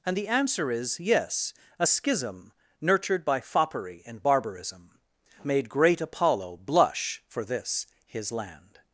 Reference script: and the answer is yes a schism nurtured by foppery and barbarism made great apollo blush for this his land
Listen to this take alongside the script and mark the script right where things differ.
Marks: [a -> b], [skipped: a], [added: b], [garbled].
and the answer is yes a schism nurtured by foppery and barbarism made great apollo blush for this his land